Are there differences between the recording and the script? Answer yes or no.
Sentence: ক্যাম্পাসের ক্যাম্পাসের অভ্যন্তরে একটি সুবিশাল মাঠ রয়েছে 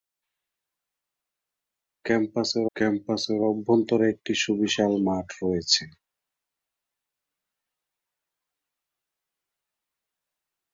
no